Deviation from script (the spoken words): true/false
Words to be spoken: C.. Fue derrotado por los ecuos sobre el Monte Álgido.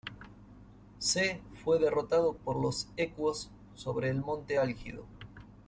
false